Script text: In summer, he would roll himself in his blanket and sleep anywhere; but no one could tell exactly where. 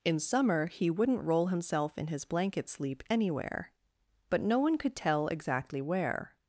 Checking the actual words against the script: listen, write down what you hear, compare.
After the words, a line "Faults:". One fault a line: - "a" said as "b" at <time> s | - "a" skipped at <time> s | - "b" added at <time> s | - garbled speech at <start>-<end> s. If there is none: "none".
In summer, he wouldn't roll himself in his blanket sleep anywhere; but no one could tell exactly where.
Faults:
- "would" said as "wouldn't" at 0.9 s
- "and" skipped at 2.7 s